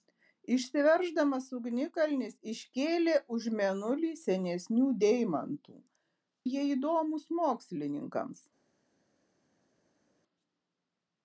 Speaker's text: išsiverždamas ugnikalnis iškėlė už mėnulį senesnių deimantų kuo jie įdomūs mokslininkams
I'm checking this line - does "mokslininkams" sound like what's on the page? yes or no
yes